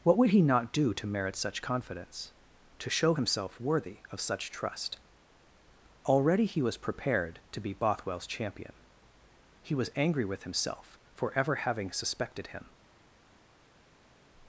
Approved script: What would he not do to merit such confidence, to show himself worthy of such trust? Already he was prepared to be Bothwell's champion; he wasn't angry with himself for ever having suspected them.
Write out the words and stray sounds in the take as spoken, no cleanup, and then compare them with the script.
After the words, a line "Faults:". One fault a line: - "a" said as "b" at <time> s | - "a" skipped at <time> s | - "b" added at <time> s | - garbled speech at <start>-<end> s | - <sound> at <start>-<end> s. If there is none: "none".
What would he not do to merit such confidence, to show himself worthy of such trust? Already he was prepared to be Bothwell's champion; he was angry with himself for ever having suspected him.
Faults:
- "wasn't" said as "was" at 9.7 s
- "them" said as "him" at 12.5 s